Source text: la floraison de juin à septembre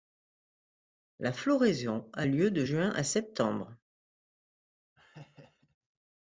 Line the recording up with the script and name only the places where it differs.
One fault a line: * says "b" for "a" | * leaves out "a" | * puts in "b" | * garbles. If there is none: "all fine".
* puts in "a lieu"